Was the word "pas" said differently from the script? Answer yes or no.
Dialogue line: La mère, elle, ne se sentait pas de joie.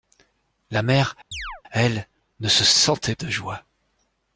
yes